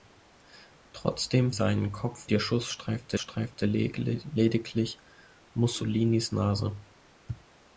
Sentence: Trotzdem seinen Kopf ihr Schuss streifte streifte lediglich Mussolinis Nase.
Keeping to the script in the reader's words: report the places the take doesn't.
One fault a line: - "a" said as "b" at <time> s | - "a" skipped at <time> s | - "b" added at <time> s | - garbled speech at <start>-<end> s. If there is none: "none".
none